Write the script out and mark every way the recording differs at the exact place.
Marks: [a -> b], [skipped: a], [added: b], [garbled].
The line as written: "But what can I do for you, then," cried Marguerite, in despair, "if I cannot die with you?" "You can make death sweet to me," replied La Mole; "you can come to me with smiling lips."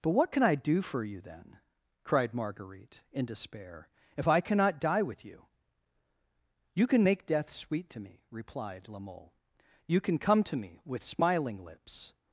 "But what can I do for you, then," cried Marguerite, in despair, "if I cannot die with you?" "You can make death sweet to me," replied La Mole; "you can come to me with smiling lips."